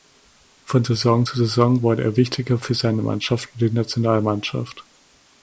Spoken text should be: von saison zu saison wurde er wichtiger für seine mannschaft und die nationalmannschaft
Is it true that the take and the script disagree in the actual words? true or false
false